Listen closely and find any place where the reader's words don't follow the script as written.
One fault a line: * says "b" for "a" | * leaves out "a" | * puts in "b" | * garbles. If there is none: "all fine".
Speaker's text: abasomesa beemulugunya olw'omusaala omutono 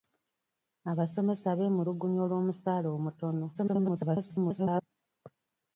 * garbles